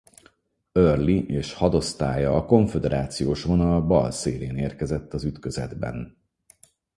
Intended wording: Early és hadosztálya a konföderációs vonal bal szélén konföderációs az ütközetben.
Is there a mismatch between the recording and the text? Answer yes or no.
yes